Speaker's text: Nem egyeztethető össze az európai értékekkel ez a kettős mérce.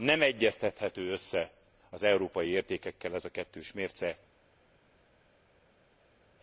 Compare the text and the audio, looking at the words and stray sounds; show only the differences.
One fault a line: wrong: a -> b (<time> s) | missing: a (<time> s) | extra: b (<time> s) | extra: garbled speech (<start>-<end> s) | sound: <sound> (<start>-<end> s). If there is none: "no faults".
no faults